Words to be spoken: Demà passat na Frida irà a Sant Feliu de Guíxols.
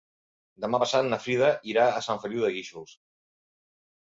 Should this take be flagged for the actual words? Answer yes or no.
no